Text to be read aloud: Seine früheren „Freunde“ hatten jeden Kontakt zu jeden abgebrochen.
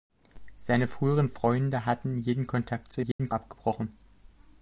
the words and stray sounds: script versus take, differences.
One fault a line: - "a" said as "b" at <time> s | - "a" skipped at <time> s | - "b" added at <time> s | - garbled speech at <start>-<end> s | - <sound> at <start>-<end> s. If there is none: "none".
- dropout at 3.1-3.2 s